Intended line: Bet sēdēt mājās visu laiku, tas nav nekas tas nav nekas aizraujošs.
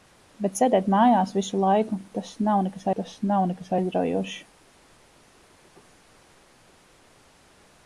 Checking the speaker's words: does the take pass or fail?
pass